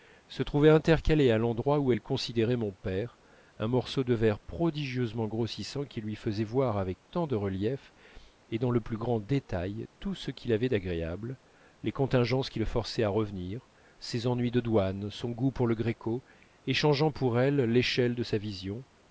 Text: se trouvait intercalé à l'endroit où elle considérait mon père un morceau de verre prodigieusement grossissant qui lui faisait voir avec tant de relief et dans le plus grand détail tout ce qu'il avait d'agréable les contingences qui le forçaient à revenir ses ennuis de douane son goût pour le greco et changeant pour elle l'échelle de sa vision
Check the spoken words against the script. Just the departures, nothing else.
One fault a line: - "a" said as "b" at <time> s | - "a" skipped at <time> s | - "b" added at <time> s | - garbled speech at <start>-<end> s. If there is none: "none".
none